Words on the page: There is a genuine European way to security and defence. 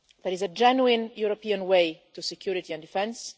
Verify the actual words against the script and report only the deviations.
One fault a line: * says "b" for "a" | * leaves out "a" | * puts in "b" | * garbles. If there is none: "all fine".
all fine